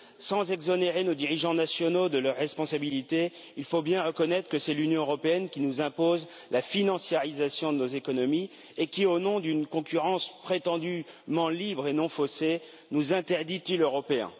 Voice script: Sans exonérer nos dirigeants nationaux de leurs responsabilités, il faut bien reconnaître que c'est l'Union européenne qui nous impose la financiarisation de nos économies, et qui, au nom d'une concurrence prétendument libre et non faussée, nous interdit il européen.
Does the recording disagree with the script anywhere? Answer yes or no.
no